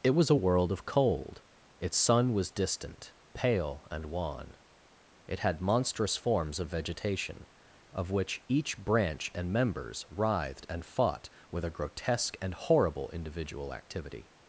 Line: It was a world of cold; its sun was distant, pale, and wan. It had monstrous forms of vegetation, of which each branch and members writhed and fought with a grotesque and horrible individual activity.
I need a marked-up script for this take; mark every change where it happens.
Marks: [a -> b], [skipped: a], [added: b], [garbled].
It was a world of cold; its sun was distant, pale, and wan. It had monstrous forms of vegetation, of which each branch and members writhed and fought with a grotesque and horrible individual activity.